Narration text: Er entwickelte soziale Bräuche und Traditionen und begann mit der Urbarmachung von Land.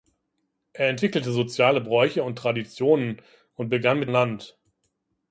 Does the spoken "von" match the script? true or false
false